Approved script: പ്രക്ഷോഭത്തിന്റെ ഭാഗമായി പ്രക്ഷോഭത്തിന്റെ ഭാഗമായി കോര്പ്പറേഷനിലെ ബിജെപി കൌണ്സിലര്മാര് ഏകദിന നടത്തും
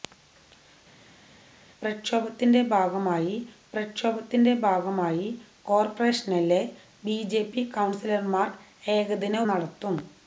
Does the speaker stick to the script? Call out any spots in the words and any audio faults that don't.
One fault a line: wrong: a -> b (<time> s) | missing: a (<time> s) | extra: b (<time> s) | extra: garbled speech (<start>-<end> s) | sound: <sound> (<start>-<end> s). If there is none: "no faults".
no faults